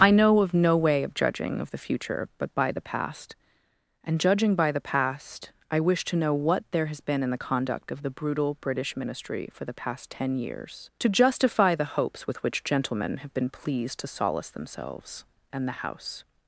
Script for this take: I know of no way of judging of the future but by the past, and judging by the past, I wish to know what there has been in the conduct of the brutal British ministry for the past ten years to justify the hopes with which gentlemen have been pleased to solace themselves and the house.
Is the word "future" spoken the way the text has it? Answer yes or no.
yes